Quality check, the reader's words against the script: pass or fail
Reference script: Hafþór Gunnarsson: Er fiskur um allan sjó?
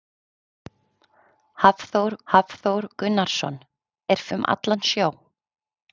fail